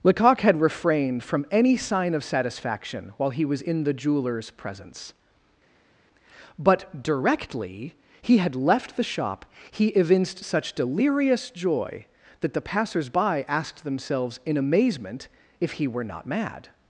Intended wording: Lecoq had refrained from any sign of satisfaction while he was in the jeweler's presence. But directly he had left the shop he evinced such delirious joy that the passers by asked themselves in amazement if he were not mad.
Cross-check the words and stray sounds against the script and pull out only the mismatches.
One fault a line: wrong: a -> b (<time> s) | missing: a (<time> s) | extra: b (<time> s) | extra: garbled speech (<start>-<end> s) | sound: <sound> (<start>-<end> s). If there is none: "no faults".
no faults